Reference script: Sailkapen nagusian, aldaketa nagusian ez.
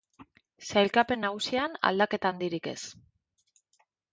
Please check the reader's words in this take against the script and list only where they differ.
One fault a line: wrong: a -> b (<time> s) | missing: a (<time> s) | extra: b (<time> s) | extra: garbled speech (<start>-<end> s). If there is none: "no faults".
wrong: nagusian -> handirik (2.3 s)